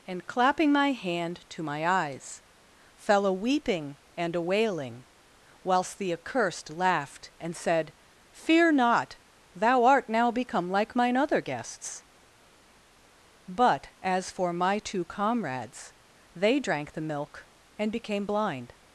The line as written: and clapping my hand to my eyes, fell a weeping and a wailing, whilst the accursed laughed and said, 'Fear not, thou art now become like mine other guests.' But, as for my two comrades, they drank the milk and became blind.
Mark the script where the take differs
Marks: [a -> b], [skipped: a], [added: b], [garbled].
and clapping my hand to my eyes, fell a weeping and a wailing, whilst the accursed laughed and said, 'Fear not, thou art now become like mine other guests.' But, as for my two comrades, they drank the milk and became blind.